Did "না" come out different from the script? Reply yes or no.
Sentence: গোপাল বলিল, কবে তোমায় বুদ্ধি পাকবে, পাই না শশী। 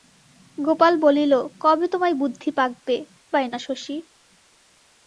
no